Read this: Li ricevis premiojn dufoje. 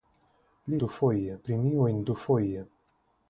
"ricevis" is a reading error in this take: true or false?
true